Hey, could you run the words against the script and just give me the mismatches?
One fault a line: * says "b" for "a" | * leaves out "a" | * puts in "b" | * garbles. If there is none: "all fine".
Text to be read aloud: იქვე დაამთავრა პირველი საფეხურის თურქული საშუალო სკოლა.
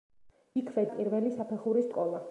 * leaves out "დაამთავრა"
* leaves out "თურქული საშუალო"